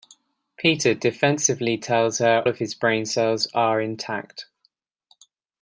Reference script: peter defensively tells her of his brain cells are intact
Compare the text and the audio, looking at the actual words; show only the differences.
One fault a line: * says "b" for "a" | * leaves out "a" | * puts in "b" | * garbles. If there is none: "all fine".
all fine